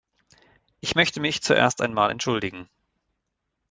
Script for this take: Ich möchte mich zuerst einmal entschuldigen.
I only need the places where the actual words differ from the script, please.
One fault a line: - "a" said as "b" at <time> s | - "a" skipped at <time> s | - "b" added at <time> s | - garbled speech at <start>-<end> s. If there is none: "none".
none